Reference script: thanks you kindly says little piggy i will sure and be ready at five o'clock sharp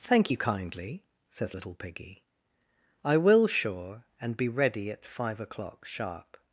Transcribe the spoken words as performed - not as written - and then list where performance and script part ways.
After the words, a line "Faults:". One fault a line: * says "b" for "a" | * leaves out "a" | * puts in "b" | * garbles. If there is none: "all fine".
thank you kindly says little piggy i will sure and be ready at five o'clock sharp
Faults:
* says "thank" for "thanks"